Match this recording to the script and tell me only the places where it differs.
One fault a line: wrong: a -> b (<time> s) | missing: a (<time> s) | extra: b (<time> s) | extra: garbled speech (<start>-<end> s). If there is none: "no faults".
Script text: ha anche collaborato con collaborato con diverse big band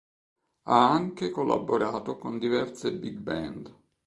missing: collaborato con (2.4 s)